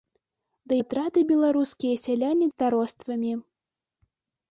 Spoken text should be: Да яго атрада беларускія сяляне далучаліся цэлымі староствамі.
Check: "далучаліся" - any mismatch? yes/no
yes